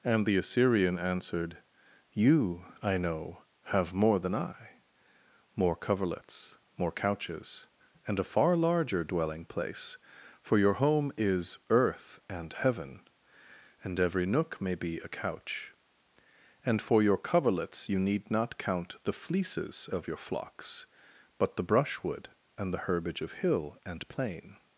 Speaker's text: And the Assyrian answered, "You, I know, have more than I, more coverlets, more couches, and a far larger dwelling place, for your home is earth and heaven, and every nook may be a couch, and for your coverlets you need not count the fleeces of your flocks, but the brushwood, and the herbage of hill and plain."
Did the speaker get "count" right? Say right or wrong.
right